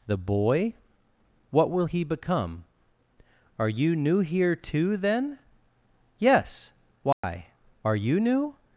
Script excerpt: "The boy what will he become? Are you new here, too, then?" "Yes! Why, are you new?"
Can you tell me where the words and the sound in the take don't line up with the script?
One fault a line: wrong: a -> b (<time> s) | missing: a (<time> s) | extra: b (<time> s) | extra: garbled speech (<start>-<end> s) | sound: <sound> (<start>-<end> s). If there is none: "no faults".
sound: dropout (7.1-7.2 s)